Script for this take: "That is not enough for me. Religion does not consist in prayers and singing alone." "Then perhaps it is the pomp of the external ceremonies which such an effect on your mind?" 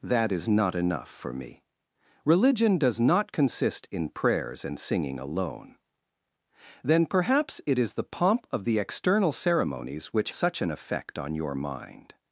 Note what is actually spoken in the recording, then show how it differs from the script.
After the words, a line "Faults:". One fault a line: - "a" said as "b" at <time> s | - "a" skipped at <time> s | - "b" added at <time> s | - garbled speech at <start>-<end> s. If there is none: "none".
"That is not enough for me. Religion does not consist in prayers and singing alone." "Then perhaps it is the pomp of the external ceremonies which such an effect on your mind?"
Faults:
none